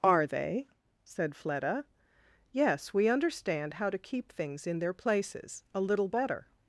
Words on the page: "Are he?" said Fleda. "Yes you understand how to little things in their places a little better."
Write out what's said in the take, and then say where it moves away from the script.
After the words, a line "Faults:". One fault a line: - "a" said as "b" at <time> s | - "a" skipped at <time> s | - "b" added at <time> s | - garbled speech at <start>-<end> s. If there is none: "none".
"Are they?" said Fleda. "Yes we understand how to keep things in their places a little better."
Faults:
- "he" said as "they" at 0.2 s
- "you" said as "we" at 2.9 s
- "little" said as "keep" at 4.0 s